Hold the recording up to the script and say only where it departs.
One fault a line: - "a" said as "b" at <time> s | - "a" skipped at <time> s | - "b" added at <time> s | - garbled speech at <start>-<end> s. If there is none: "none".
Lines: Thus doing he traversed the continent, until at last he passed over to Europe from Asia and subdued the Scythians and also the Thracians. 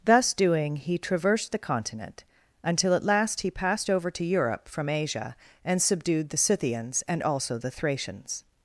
none